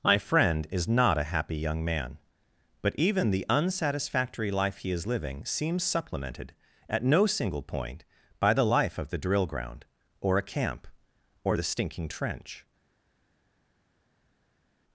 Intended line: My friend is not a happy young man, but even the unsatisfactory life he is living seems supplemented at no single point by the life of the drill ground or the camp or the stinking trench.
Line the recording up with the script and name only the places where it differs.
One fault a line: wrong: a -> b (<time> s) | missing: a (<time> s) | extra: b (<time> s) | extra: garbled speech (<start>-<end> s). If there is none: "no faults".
wrong: the -> a (10.4 s)